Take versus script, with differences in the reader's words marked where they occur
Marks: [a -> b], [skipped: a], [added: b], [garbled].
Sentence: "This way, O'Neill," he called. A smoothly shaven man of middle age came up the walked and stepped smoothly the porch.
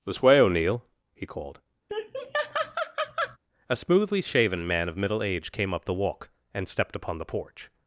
"This way, O'Neill," he called. A smoothly shaven man of middle age came up the [walked -> walk] and stepped [smoothly -> upon] the porch.